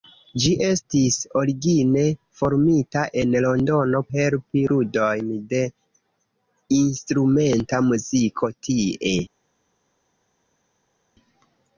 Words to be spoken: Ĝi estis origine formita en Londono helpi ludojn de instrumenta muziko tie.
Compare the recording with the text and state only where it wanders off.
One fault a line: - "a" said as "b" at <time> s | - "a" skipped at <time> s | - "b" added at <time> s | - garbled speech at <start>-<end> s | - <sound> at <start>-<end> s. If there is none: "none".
none